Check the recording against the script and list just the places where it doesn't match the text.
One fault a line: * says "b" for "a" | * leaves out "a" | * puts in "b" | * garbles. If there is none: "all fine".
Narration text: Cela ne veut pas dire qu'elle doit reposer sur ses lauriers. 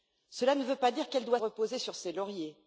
all fine